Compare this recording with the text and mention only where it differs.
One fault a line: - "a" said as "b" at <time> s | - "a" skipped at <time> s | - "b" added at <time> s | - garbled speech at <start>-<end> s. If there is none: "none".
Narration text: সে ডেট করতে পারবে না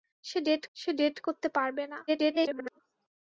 - "সে ডেট" added at 0.8 s
- garbled speech at 2.1-2.8 s